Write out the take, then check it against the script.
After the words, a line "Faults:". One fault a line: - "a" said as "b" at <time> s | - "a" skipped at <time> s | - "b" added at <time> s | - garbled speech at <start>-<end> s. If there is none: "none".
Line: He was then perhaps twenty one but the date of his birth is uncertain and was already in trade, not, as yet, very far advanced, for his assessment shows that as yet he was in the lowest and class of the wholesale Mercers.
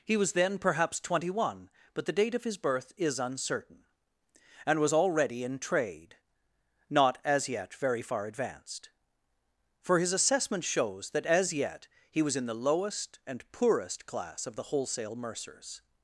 He was then perhaps twenty one but the date of his birth is uncertain and was already in trade, not, as yet, very far advanced, for his assessment shows that as yet he was in the lowest and poorest class of the wholesale Mercers.
Faults:
- "poorest" added at 13.5 s